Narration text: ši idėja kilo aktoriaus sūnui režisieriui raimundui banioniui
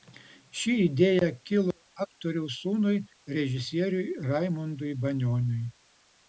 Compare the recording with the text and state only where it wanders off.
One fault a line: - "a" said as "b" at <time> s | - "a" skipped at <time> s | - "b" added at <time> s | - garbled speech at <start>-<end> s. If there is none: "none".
none